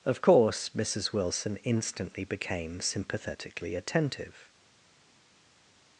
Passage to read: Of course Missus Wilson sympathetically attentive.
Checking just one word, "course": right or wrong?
right